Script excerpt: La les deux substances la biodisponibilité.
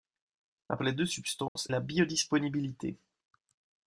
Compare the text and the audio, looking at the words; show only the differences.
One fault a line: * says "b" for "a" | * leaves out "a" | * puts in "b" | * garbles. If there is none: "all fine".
all fine